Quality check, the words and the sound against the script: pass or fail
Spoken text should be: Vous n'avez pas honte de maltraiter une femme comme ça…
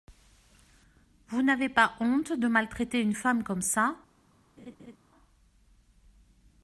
fail